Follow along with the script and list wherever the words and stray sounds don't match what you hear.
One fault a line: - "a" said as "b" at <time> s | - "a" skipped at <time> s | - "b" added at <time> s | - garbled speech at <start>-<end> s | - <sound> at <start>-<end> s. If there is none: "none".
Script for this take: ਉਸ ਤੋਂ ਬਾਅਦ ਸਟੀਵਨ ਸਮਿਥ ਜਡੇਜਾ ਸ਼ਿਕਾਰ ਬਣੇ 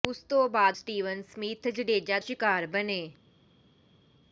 none